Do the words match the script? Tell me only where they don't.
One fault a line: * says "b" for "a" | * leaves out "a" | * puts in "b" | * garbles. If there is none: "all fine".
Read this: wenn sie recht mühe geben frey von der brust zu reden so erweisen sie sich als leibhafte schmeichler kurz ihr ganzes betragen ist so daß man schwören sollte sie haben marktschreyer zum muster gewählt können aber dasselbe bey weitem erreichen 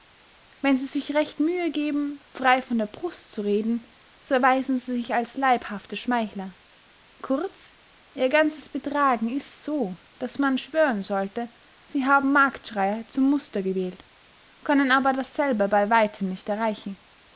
* puts in "sich"
* puts in "nicht"